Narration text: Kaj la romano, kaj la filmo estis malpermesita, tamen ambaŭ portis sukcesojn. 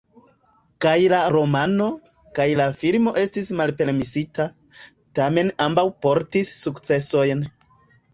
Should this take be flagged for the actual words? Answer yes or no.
no